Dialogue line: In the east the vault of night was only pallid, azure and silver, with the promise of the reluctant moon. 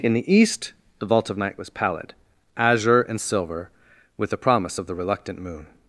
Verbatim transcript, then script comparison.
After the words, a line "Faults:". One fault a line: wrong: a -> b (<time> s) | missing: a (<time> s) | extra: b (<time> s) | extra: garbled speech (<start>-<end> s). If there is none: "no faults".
In the east the vault of night was pallid, azure and silver, with the promise of the reluctant moon.
Faults:
missing: only (1.7 s)